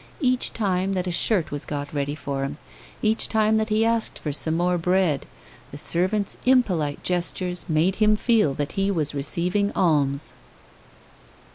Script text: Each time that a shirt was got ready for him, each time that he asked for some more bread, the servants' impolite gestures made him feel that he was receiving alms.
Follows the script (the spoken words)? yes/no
yes